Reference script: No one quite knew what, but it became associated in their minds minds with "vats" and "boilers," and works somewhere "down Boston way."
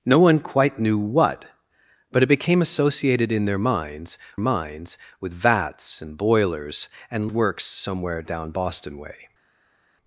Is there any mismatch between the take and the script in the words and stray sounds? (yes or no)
no